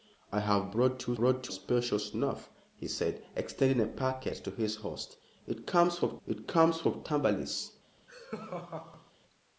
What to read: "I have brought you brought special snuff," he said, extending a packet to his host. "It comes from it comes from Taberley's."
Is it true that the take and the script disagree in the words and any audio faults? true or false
true